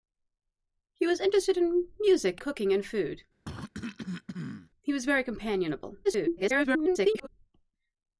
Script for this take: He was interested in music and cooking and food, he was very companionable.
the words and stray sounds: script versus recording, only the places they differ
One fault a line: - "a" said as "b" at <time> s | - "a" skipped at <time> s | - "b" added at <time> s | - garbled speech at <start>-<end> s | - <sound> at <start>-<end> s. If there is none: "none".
- "and" skipped at 2.4 s
- cough at 3.4-4.7 s
- garbled speech at 6.0-7.3 s